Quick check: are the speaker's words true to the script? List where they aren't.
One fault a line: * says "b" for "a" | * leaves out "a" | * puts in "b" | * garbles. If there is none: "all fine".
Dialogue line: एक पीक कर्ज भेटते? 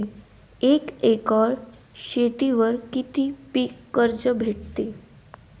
* puts in "एकर शेतीवर किती"